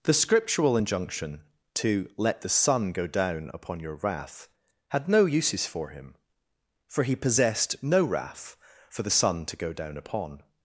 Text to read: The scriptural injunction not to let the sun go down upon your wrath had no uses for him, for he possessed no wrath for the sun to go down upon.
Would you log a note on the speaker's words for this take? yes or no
yes